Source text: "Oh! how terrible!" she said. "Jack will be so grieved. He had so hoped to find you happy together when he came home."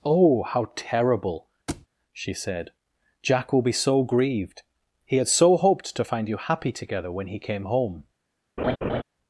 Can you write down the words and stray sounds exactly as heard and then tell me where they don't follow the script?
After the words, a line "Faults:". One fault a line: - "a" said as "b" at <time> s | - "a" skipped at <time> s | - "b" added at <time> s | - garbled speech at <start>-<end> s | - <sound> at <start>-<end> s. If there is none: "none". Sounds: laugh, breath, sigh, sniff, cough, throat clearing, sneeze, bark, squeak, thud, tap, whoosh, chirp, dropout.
"Oh! how terrible!" she said. "Jack will be so grieved. He had so hoped to find you happy together when he came home."
Faults:
- thud at 1.7-1.9 s
- laugh at 8.6-9.0 s